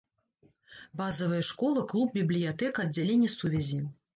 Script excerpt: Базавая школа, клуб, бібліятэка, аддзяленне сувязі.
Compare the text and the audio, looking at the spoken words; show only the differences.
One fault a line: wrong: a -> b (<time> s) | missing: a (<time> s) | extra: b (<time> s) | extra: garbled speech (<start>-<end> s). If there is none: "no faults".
no faults